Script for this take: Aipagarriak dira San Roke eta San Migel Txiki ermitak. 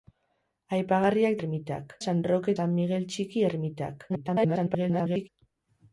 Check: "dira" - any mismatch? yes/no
yes